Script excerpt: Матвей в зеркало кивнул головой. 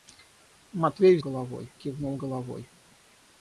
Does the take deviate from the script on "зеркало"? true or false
true